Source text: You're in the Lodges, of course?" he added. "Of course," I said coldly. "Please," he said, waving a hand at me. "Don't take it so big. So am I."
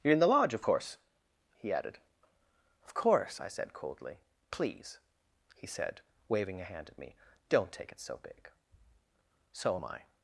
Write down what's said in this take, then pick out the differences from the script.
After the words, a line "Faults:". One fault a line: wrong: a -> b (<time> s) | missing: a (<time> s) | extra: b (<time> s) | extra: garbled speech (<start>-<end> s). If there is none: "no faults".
You're in the Lodge, of course?" he added. "Of course," I said coldly. "Please," he said, waving a hand at me. "Don't take it so big. So am I."
Faults:
wrong: Lodges -> Lodge (0.3 s)